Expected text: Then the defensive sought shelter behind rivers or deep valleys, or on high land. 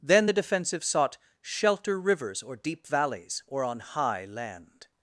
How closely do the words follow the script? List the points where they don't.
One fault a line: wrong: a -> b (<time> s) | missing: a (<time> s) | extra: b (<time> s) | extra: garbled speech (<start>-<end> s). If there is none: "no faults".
missing: behind (2.0 s)